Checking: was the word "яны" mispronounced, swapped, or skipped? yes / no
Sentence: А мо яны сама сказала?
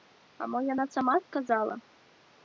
yes